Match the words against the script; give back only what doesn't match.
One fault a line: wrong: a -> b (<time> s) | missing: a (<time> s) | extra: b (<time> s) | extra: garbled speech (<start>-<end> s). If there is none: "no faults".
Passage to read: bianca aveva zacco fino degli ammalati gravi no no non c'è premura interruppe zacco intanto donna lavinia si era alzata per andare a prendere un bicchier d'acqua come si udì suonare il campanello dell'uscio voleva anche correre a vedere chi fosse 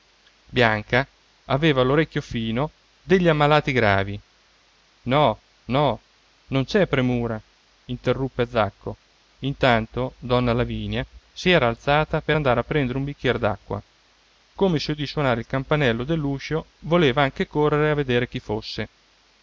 wrong: zacco -> l'orecchio (1.8 s)